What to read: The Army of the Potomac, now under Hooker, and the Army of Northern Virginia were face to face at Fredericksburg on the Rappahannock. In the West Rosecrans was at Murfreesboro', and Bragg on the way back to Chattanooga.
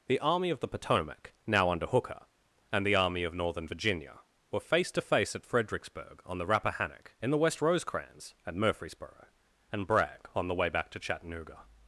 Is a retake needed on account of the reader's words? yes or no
yes